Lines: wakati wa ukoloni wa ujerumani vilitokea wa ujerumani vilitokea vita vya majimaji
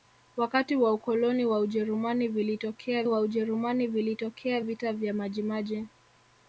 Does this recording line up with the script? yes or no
yes